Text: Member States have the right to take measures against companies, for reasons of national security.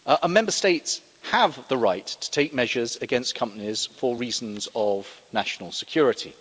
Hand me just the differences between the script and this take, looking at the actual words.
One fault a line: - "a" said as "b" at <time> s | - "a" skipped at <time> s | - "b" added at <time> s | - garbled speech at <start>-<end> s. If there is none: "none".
none